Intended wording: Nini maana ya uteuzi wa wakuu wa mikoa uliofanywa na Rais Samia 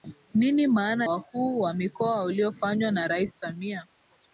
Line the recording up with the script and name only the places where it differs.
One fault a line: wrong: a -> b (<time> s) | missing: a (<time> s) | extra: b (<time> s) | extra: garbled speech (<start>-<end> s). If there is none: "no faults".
missing: ya uteuzi wa (1.1 s)